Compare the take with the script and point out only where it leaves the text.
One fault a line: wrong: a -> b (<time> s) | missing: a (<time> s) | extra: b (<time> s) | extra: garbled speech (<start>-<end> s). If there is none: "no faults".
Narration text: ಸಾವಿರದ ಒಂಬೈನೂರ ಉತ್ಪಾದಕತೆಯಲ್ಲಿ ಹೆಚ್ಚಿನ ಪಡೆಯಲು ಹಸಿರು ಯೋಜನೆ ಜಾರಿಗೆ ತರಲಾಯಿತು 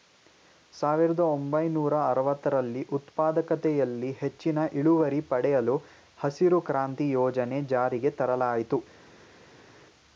extra: ಅರವತ್ತರಲ್ಲಿ (2.1 s)
extra: ಇಳುವರಿ (4.7 s)
extra: ಕ್ರಾಂತಿ (6.7 s)